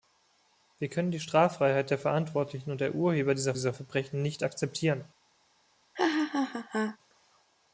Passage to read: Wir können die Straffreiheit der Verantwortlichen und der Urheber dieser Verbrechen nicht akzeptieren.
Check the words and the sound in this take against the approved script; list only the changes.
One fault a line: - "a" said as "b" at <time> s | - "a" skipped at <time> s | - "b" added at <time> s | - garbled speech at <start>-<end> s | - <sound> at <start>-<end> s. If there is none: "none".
- "dieser" added at 3.5 s
- laugh at 5.9-7.0 s